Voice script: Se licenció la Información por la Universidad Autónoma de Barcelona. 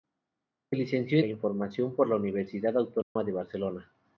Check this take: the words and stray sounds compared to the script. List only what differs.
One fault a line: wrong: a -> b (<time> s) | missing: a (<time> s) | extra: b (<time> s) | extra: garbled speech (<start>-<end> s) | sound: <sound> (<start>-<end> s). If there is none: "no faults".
sound: dropout (3.0-3.2 s)